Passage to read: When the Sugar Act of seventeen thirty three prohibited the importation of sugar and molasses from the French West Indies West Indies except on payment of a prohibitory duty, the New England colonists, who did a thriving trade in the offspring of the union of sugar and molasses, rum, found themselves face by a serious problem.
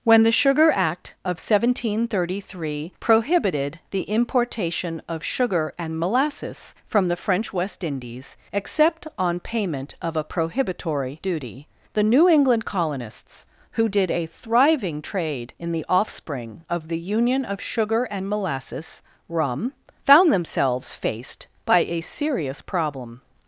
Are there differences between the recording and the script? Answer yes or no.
yes